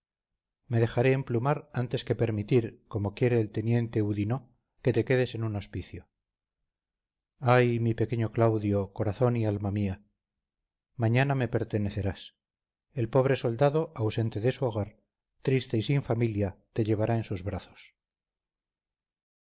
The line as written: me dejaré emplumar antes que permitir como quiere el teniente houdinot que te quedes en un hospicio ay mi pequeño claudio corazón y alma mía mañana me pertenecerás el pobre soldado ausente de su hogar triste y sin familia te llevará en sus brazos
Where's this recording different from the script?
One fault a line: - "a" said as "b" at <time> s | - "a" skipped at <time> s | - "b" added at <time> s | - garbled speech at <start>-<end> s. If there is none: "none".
none